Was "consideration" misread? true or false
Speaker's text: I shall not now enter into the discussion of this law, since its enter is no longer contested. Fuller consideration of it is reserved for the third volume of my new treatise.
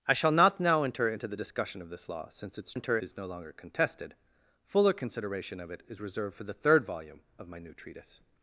false